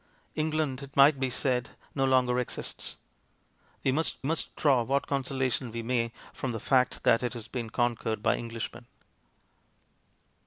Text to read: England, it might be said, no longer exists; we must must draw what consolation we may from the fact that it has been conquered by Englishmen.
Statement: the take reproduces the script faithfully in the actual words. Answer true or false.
true